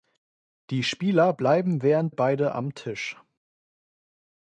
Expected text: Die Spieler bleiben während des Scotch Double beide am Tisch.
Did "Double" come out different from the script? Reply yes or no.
yes